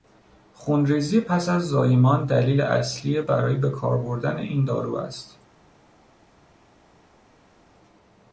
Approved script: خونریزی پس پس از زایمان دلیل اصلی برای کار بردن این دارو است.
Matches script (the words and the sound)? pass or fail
fail